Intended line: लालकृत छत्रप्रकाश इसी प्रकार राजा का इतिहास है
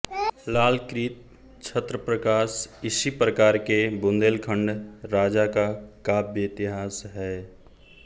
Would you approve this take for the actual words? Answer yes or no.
no